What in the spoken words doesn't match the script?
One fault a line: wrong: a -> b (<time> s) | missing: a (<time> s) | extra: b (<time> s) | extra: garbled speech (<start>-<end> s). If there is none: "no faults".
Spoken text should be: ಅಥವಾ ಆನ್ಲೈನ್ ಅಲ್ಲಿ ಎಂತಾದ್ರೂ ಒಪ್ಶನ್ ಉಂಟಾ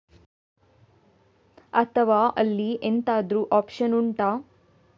missing: ಆನ್ಲೈನ್ (2.2 s)